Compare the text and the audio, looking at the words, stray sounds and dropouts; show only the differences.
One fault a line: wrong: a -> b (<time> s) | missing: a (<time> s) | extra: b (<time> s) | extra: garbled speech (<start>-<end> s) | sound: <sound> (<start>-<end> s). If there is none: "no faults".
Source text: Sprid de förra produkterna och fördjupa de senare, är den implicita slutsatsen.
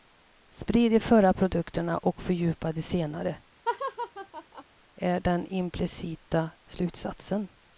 sound: laugh (3.7-4.6 s)